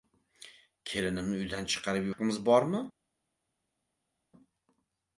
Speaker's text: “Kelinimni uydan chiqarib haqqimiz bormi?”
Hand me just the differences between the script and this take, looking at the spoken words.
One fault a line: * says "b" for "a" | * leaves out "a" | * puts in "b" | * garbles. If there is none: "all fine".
all fine